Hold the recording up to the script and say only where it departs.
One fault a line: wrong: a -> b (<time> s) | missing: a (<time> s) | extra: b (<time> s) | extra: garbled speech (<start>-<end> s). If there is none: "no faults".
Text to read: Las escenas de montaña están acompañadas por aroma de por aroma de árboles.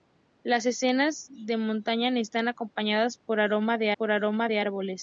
no faults